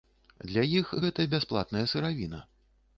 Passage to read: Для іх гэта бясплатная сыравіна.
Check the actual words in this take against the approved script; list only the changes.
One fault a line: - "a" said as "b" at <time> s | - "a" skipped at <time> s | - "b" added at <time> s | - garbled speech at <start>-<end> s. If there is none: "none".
none